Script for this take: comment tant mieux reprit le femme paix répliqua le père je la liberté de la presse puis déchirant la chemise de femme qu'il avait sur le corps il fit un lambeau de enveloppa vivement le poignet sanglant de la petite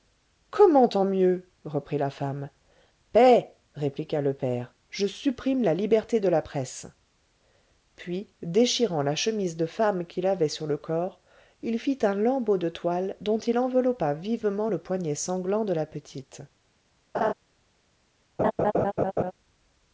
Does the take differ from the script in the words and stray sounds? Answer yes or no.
yes